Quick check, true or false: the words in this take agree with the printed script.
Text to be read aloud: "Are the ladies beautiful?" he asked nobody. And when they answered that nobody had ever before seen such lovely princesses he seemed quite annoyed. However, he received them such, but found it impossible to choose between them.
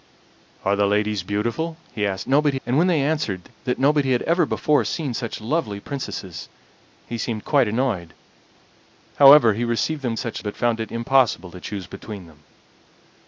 true